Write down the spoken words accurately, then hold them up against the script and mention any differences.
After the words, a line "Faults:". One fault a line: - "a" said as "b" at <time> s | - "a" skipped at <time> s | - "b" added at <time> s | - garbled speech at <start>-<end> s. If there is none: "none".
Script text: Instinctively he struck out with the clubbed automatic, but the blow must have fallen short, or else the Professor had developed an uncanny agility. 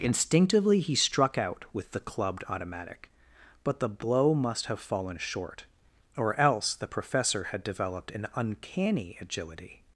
Instinctively he struck out with the clubbed automatic, but the blow must have fallen short, or else the Professor had developed an uncanny agility.
Faults:
none